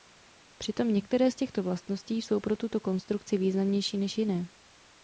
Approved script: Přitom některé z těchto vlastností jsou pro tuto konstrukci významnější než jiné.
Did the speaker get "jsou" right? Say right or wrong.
right